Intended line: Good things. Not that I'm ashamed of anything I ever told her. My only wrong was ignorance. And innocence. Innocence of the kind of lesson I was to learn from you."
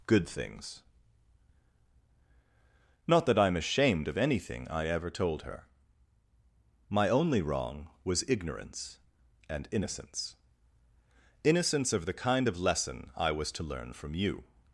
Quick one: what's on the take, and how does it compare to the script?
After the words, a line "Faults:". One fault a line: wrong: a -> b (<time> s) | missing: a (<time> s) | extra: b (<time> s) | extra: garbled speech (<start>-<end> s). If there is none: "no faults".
Good things. Not that I'm ashamed of anything I ever told her. My only wrong was ignorance. And innocence. Innocence of the kind of lesson I was to learn from you."
Faults:
no faults